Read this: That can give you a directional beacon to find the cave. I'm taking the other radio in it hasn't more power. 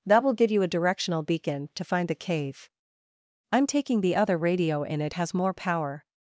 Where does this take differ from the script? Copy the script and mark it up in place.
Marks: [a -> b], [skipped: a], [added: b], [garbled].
That [can -> will] give you a directional beacon to find the cave. I'm taking the other radio in it [hasn't -> has] more power.